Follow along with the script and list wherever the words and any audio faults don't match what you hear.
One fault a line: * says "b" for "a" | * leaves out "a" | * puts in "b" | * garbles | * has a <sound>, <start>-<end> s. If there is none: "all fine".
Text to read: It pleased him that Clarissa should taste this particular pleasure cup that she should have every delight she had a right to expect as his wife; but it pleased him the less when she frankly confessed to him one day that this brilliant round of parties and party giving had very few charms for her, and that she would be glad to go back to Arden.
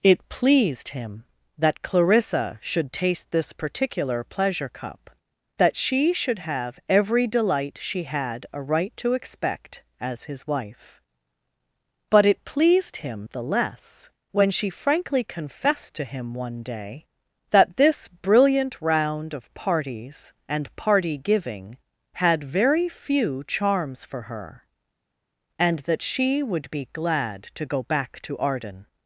all fine